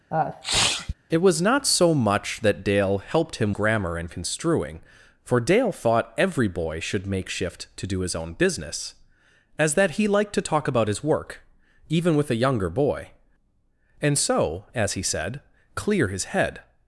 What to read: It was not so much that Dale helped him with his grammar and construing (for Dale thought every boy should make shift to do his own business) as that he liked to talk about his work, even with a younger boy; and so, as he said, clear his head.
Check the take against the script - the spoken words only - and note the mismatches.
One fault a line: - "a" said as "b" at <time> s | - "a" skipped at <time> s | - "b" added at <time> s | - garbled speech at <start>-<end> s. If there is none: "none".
- "with his" skipped at 3.5 s